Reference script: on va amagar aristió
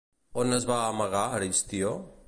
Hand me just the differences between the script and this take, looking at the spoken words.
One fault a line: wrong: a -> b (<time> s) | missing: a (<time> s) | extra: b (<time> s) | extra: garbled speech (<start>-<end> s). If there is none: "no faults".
extra: es (0.6 s)